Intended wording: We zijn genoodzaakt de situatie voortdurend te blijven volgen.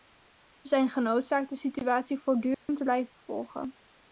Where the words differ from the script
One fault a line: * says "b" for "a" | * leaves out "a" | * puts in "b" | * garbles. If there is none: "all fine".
all fine